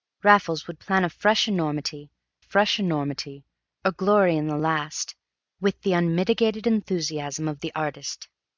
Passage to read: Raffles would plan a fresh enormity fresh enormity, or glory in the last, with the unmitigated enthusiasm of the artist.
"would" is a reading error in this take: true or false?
false